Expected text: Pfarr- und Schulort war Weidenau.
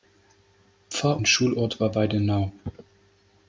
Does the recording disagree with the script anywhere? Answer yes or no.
no